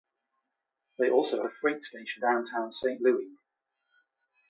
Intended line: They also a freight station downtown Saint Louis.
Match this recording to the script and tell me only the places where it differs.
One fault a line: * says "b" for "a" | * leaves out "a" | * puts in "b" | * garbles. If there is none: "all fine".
all fine